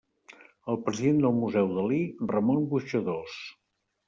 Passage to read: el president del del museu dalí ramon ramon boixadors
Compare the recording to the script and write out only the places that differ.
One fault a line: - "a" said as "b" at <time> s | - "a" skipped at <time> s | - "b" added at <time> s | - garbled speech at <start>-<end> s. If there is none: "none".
- "del" skipped at 1.4 s
- "ramon" skipped at 2.6 s